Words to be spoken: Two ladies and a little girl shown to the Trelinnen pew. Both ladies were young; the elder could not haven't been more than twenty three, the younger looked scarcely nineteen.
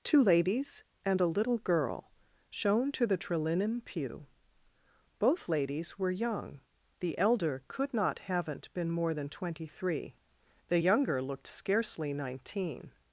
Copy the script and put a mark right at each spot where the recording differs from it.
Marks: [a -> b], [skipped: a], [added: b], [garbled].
Two ladies and a little girl shown to the Trelinnen pew. Both ladies were young; the elder could not haven't been more than twenty three, the younger looked scarcely nineteen.